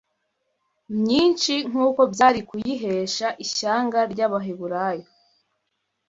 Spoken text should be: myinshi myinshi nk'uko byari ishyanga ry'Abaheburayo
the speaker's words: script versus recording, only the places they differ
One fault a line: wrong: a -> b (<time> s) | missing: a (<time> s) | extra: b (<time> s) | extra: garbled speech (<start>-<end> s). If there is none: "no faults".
missing: myinshi (1.5 s)
extra: kuyihesha (2.5 s)